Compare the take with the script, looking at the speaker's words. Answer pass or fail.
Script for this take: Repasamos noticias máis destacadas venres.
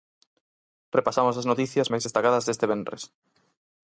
fail